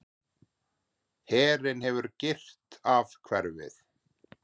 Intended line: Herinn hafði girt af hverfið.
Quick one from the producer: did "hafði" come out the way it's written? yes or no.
no